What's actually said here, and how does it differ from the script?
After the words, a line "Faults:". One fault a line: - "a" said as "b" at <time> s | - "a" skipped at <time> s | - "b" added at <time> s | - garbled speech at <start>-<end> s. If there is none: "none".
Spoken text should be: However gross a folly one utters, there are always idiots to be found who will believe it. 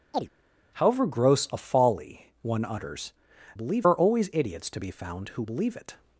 However gross a folly one utters, believe are always idiots to be found who believe it.
Faults:
- "there" said as "believe" at 3.5 s
- "will" skipped at 5.4 s